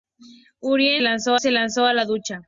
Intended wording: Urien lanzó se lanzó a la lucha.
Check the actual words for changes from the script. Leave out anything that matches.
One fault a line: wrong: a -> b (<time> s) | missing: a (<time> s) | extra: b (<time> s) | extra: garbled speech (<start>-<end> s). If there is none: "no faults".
no faults